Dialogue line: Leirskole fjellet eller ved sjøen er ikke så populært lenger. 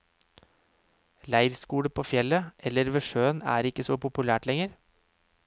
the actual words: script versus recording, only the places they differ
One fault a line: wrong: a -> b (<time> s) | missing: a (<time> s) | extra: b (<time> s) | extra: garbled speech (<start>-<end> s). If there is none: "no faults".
extra: på (1.9 s)